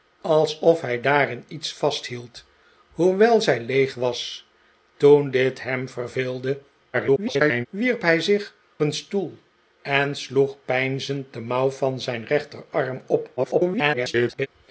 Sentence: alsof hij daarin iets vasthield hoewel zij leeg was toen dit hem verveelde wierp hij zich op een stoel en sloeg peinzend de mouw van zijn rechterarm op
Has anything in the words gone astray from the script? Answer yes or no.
yes